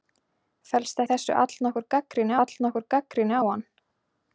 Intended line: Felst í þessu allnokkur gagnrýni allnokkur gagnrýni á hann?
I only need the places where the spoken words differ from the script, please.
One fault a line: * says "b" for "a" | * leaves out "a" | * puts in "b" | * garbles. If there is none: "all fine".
all fine